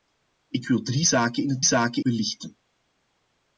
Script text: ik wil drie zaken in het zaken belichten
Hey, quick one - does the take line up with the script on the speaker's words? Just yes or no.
yes